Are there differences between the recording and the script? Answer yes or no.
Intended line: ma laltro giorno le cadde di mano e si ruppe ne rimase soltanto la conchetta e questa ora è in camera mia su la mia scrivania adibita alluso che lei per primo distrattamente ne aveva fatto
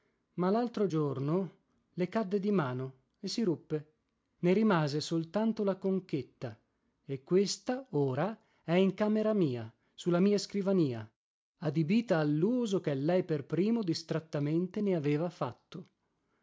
no